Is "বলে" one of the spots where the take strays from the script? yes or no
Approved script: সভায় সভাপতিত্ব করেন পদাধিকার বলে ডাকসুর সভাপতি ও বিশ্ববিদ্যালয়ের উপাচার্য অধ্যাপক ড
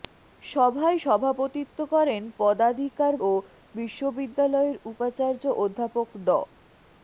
yes